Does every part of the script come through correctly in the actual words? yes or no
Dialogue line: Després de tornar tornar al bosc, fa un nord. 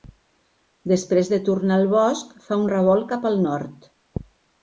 no